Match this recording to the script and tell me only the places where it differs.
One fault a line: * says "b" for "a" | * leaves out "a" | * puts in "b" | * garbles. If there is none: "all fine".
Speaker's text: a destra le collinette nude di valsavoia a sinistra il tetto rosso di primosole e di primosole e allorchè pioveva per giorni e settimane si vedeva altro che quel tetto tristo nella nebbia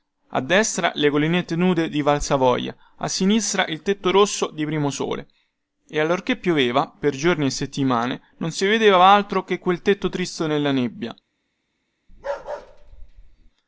* leaves out "di primosole e"
* puts in "non"